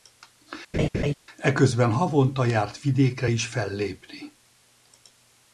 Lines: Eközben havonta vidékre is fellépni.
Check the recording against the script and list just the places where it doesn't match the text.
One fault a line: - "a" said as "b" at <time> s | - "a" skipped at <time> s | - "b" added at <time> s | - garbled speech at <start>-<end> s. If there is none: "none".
- "járt" added at 2.4 s